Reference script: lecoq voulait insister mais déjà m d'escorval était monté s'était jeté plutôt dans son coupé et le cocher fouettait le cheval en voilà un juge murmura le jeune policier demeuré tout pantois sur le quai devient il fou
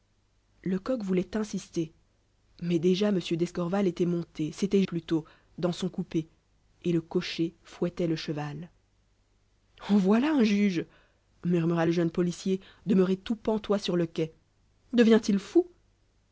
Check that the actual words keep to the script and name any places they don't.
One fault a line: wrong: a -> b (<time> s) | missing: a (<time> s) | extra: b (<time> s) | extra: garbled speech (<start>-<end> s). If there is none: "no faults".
missing: jeté (4.8 s)